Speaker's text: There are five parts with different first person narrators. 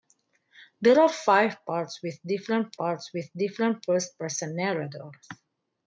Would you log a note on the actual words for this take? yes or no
yes